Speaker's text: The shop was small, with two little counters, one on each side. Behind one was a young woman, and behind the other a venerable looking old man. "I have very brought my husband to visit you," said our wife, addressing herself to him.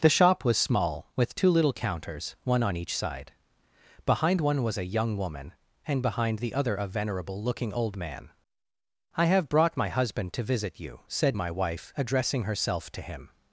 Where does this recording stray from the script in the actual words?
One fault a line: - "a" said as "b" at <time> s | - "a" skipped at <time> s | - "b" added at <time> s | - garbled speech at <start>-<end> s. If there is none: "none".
- "very" skipped at 9.5 s
- "our" said as "my" at 11.3 s